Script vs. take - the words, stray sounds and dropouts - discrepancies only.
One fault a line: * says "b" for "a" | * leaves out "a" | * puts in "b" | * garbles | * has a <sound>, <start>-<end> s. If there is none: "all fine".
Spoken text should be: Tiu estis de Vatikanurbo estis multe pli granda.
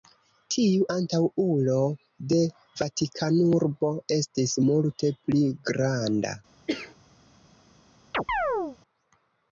* says "antaŭulo" for "estis"
* has a cough, 6.7-7.0 s
* has a chirp, 8.1-8.8 s